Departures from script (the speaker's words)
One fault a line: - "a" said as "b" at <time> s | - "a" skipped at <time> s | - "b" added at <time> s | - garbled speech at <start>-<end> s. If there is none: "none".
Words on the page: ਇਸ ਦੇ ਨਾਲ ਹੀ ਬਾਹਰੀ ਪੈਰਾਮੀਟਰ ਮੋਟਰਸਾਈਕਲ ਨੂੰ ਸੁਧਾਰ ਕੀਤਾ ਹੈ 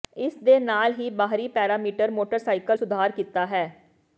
- "ਨੂੰ" skipped at 2.8 s